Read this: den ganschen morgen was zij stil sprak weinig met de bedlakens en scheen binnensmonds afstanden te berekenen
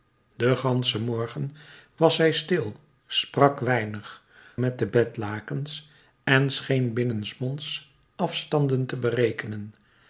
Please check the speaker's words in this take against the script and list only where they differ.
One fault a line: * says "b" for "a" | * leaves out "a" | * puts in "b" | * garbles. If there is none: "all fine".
all fine